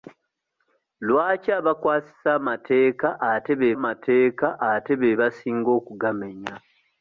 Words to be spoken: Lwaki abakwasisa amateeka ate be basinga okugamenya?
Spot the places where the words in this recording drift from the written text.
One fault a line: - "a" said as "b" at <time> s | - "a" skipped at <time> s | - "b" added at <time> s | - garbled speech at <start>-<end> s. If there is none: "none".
- "amateeka ate be" added at 3.8 s